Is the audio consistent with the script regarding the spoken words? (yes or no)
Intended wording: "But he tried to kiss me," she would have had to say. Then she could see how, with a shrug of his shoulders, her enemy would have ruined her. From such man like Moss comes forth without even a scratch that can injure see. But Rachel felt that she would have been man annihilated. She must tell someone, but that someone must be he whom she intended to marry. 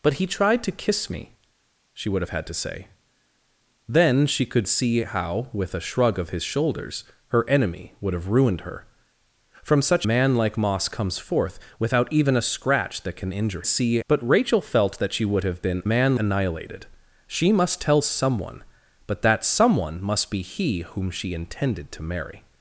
yes